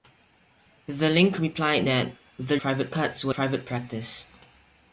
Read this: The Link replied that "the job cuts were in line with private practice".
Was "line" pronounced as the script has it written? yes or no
no